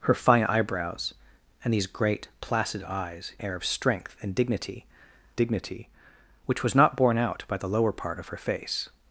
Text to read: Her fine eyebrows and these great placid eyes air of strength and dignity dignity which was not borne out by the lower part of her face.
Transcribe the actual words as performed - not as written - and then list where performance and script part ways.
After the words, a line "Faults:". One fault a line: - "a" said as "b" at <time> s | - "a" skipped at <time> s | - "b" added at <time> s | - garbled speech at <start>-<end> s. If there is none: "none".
Her fine eyebrows and these great placid eyes air of strength and dignity dignity which was not borne out by the lower part of her face.
Faults:
none